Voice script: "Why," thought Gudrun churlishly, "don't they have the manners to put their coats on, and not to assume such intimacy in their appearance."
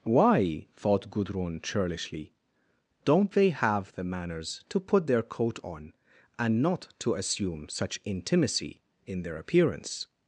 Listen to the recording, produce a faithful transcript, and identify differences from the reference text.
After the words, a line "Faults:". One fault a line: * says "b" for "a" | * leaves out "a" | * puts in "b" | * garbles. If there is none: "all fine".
"Why," thought Gudrun churlishly, "don't they have the manners to put their coat on, and not to assume such intimacy in their appearance."
Faults:
* says "coat" for "coats"